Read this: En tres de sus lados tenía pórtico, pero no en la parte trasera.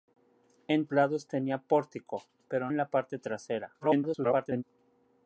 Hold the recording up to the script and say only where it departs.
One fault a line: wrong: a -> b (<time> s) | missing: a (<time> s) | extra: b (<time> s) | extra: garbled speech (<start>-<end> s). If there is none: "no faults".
missing: tres de sus (0.9 s)
missing: no (2.7 s)
extra: garbled speech (3.8-4.6 s)